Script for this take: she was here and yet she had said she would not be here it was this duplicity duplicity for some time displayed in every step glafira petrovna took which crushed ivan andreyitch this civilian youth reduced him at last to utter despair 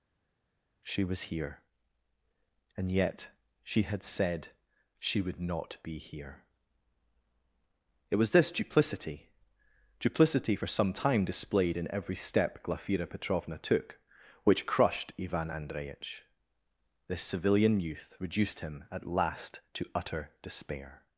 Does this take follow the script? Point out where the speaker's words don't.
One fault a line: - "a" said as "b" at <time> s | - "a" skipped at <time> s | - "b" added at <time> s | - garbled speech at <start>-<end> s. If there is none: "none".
none